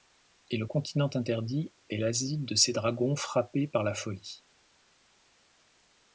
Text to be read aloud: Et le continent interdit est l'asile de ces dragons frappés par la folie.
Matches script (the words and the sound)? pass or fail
pass